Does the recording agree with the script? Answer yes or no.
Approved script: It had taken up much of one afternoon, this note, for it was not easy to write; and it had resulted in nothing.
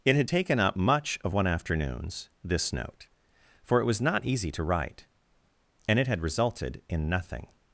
no